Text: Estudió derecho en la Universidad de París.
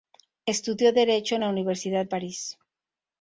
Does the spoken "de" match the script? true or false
false